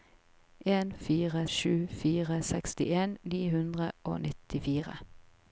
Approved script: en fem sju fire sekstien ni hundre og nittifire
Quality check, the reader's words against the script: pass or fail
fail